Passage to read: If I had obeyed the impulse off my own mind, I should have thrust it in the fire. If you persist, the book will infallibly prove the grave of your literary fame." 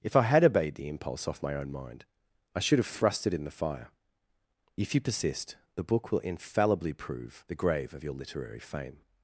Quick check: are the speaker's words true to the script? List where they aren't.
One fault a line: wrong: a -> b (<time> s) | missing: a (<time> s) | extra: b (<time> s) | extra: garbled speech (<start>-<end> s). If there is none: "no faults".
no faults